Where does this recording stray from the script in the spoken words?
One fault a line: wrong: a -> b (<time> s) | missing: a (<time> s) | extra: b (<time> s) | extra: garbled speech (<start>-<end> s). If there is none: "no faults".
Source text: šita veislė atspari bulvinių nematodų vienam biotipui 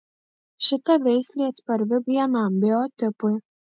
missing: bulvinių nematodų (1.9 s)